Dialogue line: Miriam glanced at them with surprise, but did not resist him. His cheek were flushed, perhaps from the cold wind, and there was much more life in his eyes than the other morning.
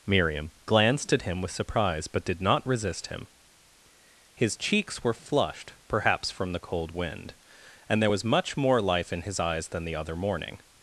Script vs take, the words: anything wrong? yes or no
yes